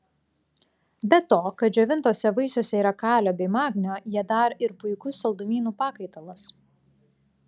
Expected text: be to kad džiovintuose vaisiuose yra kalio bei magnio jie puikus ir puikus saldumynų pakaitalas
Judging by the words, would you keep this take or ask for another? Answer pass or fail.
fail